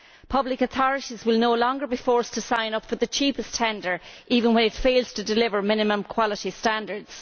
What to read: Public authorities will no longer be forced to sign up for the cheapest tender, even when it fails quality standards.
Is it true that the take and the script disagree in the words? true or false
true